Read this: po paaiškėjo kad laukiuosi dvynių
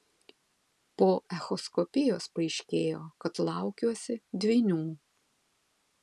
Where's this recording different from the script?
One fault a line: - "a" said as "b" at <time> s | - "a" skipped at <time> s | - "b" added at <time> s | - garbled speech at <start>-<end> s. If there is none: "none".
- "echoskopijos" added at 1.4 s